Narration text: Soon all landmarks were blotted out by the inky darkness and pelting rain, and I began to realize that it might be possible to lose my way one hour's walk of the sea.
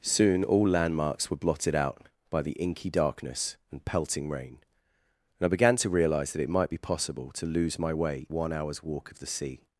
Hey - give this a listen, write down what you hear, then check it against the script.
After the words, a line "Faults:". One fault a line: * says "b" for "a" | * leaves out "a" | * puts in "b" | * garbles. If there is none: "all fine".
Soon all landmarks were blotted out by the inky darkness and pelting rain, and I began to realize that it might be possible to lose my way one hour's walk of the sea.
Faults:
all fine